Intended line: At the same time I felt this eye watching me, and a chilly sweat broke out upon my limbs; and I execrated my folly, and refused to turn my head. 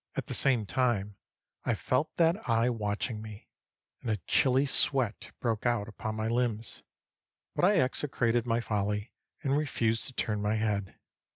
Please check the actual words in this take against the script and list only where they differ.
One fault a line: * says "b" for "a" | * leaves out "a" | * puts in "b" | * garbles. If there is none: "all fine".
* says "that" for "this"
* says "but" for "and"